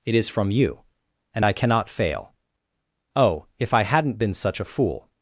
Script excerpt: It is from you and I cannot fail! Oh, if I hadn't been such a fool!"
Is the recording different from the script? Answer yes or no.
no